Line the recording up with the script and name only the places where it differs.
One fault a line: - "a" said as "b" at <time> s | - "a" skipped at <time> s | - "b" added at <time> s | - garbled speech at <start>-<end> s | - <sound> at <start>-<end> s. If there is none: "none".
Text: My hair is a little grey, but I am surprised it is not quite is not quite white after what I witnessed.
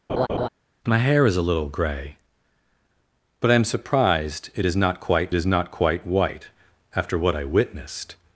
- laugh at 0.1-0.5 s